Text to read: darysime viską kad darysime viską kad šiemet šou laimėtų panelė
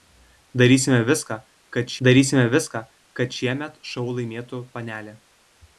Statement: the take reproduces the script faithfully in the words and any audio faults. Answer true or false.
true